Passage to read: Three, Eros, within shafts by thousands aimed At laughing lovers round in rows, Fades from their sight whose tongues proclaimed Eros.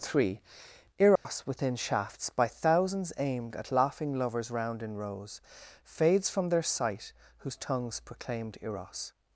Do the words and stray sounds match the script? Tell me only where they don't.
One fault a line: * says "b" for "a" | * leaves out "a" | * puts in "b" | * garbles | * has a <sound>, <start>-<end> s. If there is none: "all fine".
* has a dropout, 1.2-1.3 s